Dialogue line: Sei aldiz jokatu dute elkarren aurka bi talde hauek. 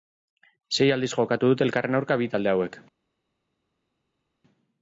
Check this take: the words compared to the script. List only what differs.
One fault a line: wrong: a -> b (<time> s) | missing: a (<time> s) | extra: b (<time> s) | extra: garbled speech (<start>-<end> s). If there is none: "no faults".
no faults